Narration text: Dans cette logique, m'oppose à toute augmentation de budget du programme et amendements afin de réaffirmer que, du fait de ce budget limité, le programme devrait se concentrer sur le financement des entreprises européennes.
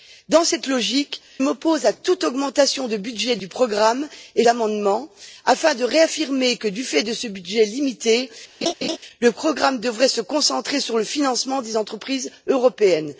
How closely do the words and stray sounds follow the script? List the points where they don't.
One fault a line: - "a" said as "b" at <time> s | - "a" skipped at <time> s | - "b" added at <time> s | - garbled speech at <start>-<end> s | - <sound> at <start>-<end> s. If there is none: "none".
- laugh at 8.6-9.0 s